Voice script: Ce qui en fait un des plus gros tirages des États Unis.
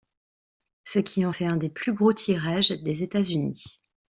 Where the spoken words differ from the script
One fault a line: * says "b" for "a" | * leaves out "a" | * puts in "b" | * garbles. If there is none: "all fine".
all fine